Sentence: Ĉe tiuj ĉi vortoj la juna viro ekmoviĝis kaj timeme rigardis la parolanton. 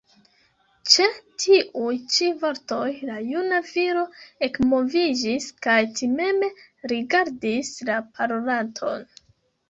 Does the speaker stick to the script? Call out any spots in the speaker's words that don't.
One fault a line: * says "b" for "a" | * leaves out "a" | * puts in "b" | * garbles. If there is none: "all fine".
all fine